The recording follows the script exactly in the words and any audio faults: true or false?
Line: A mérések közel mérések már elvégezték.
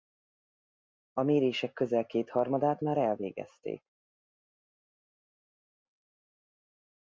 false